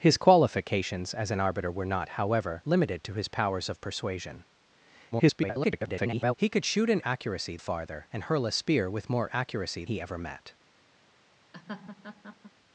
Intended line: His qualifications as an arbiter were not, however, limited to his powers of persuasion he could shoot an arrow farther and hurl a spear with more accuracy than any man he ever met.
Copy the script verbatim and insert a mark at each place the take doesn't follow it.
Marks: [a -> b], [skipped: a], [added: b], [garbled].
His qualifications as an arbiter were not, however, limited to his powers of persuasion [garbled] he could shoot an [arrow -> accuracy] farther and hurl a spear with more accuracy [skipped: than any man] he ever met.